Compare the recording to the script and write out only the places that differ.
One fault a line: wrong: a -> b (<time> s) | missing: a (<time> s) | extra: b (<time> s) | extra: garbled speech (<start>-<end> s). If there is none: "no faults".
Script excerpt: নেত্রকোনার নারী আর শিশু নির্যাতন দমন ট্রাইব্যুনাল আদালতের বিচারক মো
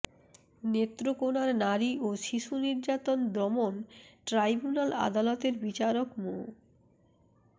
wrong: আর -> ও (2.0 s)